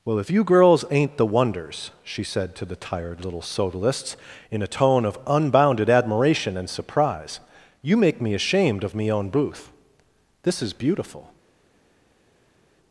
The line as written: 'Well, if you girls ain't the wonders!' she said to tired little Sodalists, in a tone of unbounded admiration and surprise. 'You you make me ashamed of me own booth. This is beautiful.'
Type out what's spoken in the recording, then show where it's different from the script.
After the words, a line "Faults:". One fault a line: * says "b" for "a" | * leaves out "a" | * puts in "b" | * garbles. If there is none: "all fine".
'Well, if you girls ain't the wonders!' she said to the tired little Sodalists, in a tone of unbounded admiration and surprise. 'You make me ashamed of me own booth. This is beautiful.'
Faults:
* puts in "the"
* leaves out "you"